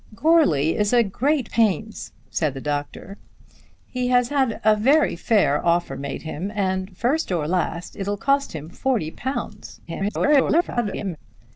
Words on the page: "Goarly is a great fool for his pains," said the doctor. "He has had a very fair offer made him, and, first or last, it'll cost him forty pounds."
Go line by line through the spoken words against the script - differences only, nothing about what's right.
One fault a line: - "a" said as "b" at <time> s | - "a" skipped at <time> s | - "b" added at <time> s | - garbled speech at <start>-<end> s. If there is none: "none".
- "fool for his" skipped at 1.5 s
- garbled speech at 9.9-11.2 s